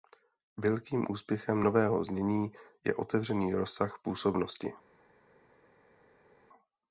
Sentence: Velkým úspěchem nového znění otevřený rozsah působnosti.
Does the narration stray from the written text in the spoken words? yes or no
yes